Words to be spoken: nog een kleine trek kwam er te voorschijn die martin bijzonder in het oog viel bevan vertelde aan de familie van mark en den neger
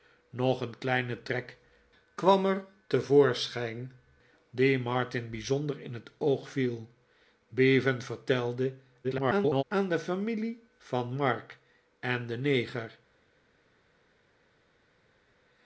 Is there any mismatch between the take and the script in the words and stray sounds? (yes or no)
yes